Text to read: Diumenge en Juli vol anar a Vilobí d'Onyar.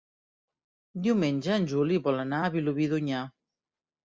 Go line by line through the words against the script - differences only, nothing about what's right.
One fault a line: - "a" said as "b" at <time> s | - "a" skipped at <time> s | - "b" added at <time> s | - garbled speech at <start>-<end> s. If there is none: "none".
none